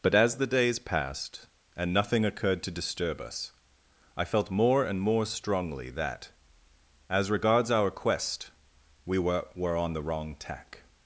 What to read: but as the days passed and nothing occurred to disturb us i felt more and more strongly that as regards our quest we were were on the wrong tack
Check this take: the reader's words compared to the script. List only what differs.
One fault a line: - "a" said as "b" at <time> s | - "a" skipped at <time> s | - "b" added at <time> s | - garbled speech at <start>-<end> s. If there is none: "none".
none